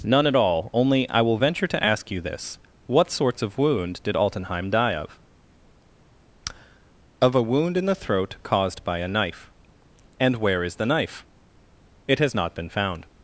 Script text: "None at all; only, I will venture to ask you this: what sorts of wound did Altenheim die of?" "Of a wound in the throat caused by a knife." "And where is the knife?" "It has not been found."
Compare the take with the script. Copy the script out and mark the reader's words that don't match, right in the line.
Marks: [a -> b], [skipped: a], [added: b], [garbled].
"None at all; only, I will venture to ask you this: what sorts of wound did Altenheim die of?" "Of a wound in the throat caused by a knife." "And where is the knife?" "It has not been found."